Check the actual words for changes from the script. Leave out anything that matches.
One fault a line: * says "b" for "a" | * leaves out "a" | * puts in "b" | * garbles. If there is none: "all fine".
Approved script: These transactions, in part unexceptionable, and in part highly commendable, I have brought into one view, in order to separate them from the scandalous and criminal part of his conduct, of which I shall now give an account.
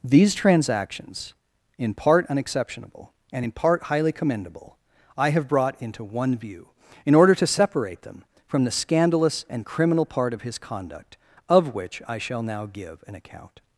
all fine